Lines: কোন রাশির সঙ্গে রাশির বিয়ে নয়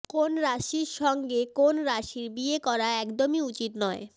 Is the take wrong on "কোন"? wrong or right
right